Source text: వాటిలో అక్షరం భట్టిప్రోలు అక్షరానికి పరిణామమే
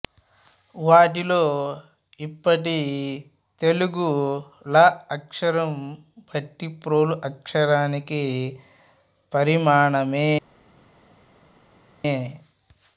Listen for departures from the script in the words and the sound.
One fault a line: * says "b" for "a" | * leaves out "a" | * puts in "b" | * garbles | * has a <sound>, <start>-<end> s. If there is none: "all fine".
* puts in "ఇప్పటి తెలుగు ళ"